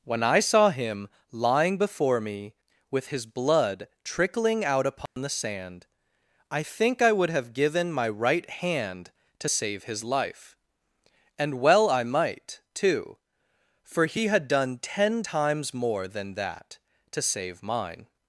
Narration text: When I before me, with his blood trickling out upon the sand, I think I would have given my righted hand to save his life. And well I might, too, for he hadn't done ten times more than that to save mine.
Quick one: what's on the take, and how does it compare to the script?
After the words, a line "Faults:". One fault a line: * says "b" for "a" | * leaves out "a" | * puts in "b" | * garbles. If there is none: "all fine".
When I saw him lying before me, with his blood trickling out upon the sand, I think I would have given my right hand to save his life. And well I might, too, for he had done ten times more than that to save mine.
Faults:
* puts in "saw him lying"
* says "right" for "righted"
* says "had" for "hadn't"